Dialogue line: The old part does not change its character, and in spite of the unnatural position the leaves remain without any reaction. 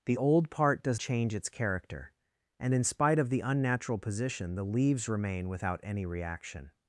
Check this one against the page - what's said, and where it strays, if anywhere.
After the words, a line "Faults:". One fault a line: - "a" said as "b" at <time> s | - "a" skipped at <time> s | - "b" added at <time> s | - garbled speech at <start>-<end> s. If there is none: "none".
The old part does change its character, and in spite of the unnatural position the leaves remain without any reaction.
Faults:
- "not" skipped at 1.0 s